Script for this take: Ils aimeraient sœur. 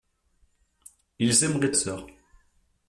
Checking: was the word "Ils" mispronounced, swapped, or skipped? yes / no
no